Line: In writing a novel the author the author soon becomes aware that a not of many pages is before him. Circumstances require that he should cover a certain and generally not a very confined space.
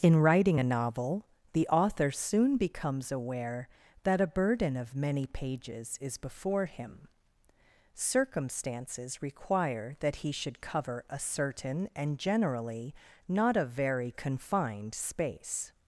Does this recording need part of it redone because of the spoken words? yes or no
yes